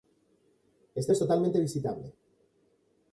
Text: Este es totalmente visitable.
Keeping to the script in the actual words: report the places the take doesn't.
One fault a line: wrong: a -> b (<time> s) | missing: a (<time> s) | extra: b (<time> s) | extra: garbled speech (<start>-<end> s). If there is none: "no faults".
no faults